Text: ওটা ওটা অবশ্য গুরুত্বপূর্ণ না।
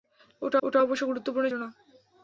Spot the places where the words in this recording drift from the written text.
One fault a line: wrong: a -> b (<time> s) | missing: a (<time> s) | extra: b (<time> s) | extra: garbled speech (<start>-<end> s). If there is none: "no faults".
no faults